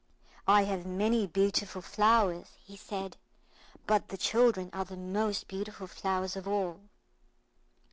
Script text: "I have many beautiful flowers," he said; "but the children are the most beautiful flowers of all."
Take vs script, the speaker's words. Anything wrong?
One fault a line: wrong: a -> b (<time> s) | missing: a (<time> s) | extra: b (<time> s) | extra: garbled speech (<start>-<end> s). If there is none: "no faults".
no faults